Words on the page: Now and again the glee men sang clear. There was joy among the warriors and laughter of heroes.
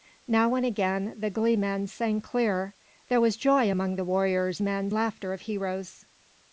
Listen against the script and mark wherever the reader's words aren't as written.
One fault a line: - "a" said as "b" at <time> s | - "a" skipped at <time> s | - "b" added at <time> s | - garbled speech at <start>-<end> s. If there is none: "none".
- "and" said as "men" at 4.6 s